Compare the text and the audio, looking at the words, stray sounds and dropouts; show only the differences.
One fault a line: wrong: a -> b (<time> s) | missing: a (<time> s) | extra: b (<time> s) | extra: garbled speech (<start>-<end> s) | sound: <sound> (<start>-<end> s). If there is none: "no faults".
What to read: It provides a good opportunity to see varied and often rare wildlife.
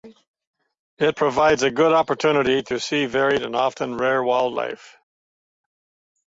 no faults